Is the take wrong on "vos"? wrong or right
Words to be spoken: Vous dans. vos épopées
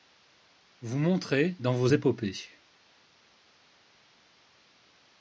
right